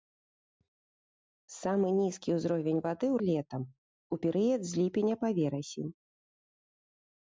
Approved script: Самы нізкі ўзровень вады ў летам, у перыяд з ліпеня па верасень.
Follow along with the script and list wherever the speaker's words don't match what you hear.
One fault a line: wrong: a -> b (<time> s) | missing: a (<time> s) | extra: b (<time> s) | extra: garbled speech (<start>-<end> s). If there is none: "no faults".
no faults